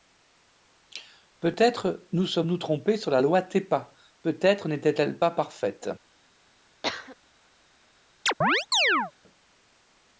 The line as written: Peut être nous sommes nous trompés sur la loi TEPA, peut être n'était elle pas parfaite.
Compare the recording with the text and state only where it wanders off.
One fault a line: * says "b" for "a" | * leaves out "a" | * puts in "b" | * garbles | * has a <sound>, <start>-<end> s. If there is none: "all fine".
* has a cough, 6.8-7.2 s
* has a chirp, 8.3-9.1 s